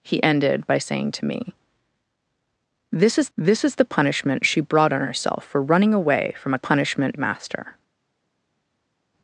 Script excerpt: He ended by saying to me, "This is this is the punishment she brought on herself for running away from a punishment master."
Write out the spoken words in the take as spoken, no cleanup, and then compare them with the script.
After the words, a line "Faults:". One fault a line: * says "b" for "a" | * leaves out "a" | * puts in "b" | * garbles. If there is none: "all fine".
He ended by saying to me, "This is this is the punishment she brought on herself for running away from a punishment master."
Faults:
all fine